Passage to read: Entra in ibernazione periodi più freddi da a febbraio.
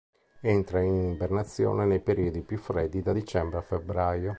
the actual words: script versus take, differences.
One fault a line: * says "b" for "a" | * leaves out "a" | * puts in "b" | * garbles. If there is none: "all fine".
* puts in "nei"
* puts in "dicembre"